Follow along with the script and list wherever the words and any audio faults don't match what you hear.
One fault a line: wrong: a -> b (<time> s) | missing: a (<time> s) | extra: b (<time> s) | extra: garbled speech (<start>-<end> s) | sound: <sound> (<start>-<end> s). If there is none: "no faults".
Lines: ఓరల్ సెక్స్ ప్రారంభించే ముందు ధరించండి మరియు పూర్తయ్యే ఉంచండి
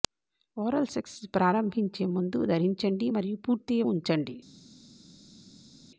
no faults